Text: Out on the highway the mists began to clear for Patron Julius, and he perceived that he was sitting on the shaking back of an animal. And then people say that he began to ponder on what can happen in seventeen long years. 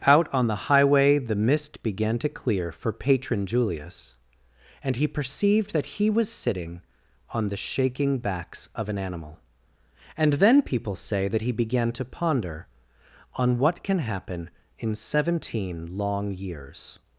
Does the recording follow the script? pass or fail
fail